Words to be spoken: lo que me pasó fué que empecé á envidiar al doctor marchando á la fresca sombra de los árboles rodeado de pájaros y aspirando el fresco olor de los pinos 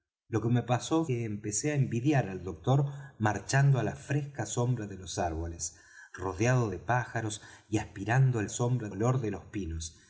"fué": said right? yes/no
no